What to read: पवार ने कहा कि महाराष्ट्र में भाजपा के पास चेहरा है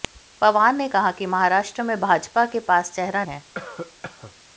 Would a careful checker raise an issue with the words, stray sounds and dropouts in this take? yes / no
yes